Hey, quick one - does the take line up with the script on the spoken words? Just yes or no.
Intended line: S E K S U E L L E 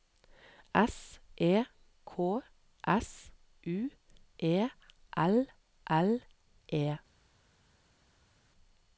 yes